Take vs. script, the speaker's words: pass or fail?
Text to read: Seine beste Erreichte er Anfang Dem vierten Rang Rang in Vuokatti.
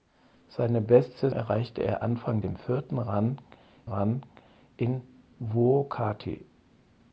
pass